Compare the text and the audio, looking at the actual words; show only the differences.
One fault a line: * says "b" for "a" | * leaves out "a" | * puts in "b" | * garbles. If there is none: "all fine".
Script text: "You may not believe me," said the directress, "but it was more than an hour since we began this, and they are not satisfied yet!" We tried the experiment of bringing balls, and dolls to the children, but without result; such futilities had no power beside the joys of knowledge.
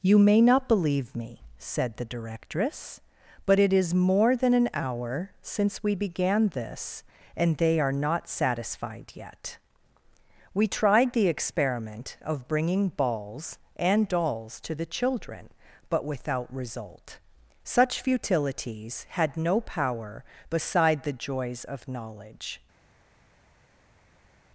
* says "is" for "was"